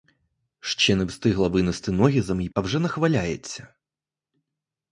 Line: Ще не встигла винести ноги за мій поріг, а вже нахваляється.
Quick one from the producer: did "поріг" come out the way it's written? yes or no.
no